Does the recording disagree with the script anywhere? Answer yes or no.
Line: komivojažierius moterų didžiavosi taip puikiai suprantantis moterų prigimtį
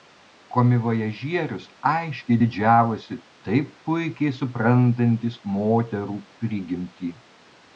yes